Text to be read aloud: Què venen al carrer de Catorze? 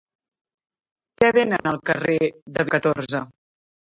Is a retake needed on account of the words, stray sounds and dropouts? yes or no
yes